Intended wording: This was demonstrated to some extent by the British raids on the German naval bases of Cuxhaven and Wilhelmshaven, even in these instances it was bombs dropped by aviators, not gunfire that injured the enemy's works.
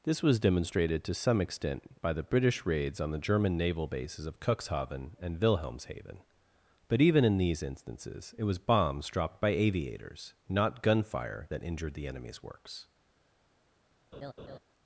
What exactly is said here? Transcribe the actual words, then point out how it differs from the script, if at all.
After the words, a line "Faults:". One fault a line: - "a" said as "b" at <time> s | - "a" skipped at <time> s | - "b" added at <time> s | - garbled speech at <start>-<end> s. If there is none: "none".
This was demonstrated to some extent by the British raids on the German naval bases of Cuxhaven and Wilhelmshaven, but even in these instances it was bombs dropped by aviators, not gunfire that injured the enemy's works.
Faults:
- "but" added at 6.9 s